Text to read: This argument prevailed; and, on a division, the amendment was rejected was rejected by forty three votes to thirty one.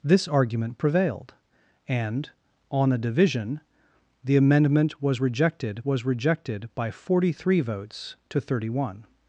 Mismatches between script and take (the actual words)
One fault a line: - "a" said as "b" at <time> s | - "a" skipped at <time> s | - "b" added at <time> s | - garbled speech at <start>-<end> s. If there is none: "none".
none